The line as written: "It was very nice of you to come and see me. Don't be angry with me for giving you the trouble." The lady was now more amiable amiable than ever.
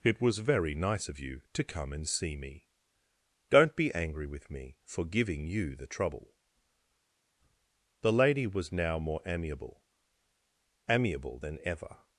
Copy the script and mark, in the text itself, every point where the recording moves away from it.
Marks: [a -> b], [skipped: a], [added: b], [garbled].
"It was very nice of you to come and see me. Don't be angry with me for giving you the trouble." The lady was now more amiable amiable than ever.